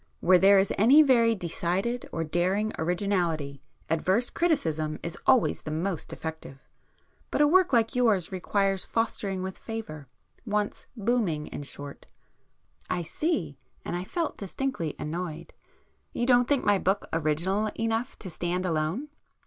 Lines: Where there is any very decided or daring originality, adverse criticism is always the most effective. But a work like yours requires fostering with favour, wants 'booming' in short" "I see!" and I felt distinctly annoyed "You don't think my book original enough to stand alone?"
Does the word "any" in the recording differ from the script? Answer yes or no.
no